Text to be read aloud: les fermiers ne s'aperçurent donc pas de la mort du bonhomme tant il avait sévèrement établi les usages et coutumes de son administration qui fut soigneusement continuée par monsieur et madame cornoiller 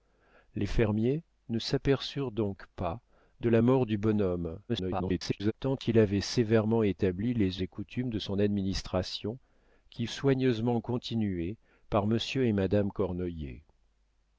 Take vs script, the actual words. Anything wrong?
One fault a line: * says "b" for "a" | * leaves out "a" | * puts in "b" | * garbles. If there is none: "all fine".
* garbles
* leaves out "usages"
* leaves out "fut"